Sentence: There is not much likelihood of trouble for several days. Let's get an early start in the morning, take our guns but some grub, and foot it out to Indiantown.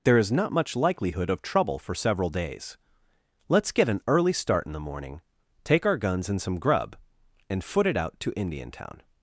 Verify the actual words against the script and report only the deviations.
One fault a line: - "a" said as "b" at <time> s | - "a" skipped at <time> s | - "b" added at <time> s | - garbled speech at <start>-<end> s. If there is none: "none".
- "but" said as "and" at 6.3 s